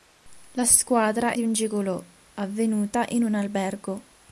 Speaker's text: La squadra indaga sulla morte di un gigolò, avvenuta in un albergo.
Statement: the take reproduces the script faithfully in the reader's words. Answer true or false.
false